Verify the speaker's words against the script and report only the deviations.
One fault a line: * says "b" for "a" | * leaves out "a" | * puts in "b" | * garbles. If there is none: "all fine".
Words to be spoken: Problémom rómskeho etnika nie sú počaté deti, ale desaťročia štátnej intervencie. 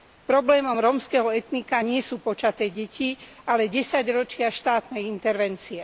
all fine